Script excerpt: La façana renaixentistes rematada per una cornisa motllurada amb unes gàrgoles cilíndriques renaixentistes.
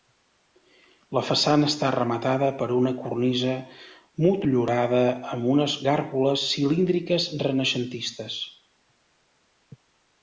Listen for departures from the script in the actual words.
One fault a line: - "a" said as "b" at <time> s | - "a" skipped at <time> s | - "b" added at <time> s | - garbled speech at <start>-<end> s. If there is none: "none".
- "renaixentistes" said as "està" at 1.7 s